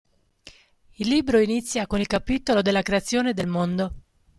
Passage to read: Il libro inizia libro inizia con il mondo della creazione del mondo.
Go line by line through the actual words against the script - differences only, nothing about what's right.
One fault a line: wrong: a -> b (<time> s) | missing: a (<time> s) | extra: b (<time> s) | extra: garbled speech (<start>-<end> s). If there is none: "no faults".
missing: libro inizia (1.9 s)
wrong: mondo -> capitolo (2.1 s)